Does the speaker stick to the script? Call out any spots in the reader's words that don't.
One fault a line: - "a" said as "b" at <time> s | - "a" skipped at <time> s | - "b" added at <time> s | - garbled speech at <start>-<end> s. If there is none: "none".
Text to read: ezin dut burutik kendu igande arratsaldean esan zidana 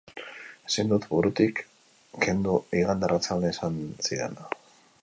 none